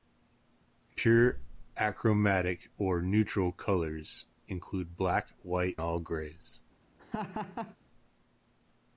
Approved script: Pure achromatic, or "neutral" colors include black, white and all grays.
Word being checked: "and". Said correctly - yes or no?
no